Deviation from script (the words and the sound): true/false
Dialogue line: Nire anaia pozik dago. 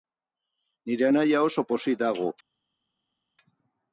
true